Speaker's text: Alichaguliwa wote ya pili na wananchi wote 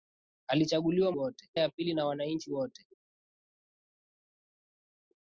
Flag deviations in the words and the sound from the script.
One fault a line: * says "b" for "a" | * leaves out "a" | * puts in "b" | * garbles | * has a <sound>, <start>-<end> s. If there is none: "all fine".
all fine